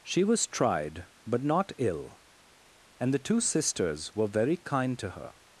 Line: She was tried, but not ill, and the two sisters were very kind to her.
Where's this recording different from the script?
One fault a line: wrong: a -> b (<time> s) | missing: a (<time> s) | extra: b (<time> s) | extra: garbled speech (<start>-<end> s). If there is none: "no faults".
no faults